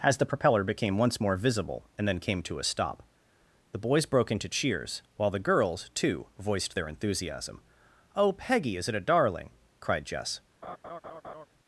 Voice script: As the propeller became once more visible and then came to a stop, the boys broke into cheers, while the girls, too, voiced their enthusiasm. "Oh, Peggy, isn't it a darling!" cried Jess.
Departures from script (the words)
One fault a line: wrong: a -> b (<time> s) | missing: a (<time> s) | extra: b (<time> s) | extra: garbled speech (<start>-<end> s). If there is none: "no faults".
wrong: isn't -> is (8.8 s)